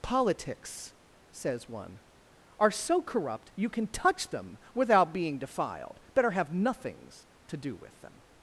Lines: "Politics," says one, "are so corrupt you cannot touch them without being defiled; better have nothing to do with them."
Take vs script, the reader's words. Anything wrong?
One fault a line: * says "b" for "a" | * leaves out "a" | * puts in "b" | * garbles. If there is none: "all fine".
* says "can" for "cannot"
* says "nothings" for "nothing"